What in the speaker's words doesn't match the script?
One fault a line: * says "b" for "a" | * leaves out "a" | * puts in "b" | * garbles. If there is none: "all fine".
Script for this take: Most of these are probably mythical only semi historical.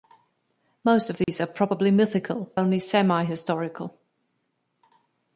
all fine